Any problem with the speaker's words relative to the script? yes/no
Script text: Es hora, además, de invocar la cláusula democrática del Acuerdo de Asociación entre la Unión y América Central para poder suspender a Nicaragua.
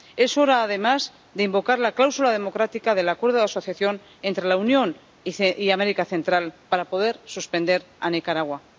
no